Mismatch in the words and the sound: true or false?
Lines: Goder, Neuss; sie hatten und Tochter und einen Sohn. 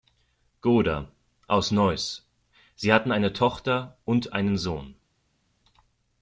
true